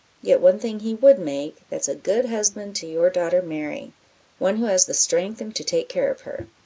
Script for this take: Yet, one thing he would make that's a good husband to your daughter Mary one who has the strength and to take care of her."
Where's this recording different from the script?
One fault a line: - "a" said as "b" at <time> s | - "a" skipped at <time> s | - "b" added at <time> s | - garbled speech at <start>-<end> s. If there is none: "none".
none